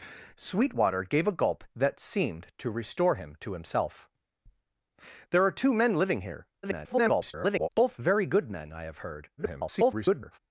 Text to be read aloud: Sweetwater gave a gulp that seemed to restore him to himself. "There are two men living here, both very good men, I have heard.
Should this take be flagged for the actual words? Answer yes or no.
yes